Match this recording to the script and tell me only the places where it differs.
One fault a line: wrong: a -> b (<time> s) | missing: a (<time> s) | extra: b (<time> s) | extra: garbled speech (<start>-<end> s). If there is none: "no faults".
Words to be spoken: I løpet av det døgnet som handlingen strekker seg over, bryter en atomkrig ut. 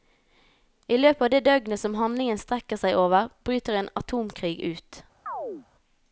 no faults